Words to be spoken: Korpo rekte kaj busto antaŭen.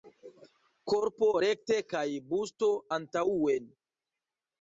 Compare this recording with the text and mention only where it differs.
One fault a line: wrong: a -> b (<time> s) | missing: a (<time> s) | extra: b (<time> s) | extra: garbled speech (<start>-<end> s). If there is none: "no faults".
no faults